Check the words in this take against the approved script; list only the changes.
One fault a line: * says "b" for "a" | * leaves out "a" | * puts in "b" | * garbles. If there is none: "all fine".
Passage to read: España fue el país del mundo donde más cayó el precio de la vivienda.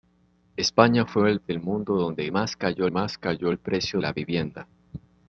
* leaves out "país"
* puts in "más cayó"
* leaves out "de"